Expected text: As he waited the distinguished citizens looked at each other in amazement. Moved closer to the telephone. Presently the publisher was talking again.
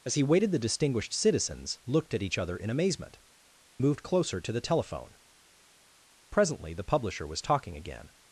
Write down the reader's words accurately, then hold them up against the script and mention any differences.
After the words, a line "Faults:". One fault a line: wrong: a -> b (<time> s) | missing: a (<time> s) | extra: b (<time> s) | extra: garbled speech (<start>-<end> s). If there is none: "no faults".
As he waited the distinguished citizens looked at each other in amazement. Moved closer to the telephone. Presently the publisher was talking again.
Faults:
no faults